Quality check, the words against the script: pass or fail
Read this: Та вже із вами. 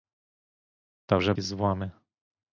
pass